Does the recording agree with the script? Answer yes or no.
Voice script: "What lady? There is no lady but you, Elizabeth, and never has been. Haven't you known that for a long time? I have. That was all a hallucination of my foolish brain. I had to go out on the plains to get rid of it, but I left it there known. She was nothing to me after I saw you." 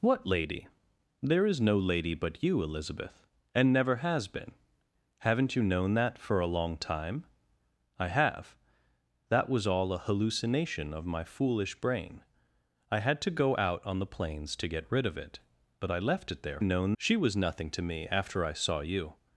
yes